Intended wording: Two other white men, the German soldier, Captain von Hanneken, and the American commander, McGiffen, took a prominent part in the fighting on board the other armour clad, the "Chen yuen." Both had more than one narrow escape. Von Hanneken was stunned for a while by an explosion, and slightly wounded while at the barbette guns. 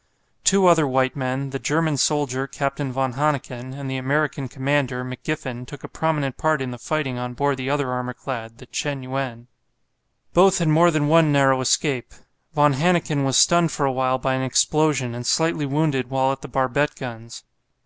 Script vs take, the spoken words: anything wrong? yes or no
no